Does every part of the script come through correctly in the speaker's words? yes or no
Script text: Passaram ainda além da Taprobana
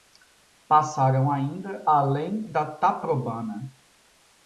yes